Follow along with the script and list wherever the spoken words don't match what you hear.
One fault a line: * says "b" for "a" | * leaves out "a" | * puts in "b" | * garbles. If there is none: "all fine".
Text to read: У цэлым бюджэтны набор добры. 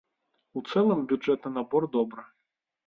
all fine